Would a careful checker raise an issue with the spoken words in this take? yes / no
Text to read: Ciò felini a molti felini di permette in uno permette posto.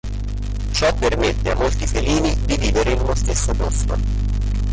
yes